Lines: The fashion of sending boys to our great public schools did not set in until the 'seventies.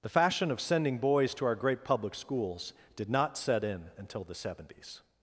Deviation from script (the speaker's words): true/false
false